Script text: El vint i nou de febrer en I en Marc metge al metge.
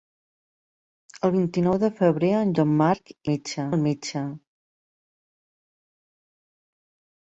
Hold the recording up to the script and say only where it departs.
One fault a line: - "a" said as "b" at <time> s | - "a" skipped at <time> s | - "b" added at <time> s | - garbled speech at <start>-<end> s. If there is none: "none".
none